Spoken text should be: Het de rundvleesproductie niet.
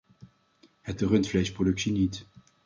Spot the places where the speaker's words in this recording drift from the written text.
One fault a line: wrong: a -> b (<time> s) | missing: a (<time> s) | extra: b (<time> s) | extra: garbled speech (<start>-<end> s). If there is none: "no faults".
no faults